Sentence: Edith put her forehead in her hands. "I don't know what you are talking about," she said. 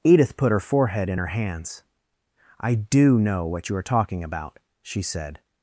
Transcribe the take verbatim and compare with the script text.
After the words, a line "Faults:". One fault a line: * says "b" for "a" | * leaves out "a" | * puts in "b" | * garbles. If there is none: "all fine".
Edith put her forehead in her hands. "I do know what you are talking about," she said.
Faults:
* says "do" for "don't"